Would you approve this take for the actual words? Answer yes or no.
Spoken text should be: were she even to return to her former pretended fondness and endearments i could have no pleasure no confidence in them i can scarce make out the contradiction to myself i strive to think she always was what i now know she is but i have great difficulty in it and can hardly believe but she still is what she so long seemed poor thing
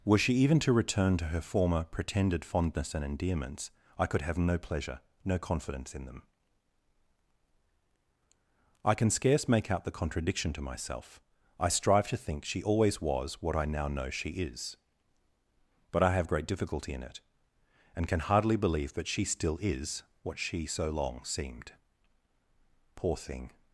no